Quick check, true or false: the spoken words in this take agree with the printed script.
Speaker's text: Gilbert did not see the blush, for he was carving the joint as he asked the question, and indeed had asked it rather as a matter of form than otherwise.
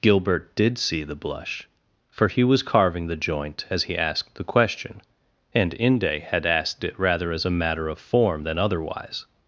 false